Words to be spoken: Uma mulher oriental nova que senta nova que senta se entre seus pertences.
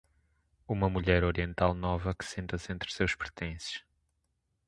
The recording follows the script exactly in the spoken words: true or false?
false